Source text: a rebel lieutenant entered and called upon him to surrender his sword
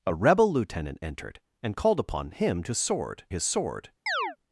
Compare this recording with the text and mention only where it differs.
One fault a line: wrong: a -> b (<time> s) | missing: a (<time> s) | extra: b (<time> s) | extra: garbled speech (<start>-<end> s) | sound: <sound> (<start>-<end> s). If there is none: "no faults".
wrong: surrender -> sword (2.8 s)
sound: chirp (4.1-4.4 s)